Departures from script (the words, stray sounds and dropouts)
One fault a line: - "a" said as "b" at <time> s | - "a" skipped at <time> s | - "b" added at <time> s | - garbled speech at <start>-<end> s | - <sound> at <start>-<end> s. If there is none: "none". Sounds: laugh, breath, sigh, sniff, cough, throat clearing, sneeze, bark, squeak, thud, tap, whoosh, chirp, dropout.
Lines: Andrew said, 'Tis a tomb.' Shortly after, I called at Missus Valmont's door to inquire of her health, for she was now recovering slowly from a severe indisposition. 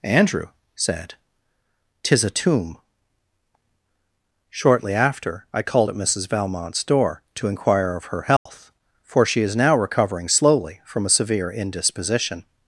- dropout at 8.4-8.5 s
- "was" said as "is" at 9.4 s